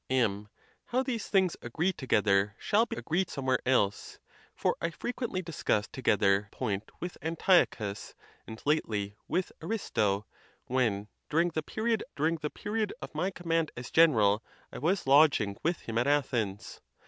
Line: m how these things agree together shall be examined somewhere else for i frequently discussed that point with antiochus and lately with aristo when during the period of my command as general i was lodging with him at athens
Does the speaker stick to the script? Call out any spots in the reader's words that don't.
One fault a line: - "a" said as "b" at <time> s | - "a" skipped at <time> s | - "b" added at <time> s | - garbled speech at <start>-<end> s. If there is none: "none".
- "examined" said as "agree" at 2.9 s
- "that" said as "together" at 5.9 s
- "during the period" added at 12.2 s